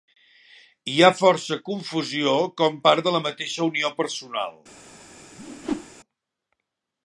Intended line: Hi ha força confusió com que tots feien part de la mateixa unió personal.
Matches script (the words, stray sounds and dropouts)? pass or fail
fail